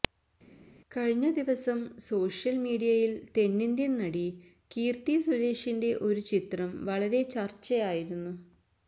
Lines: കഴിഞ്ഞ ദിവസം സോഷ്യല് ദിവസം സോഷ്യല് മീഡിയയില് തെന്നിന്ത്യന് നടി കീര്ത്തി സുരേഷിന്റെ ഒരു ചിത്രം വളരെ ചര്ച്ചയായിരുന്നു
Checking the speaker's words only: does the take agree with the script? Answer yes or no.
no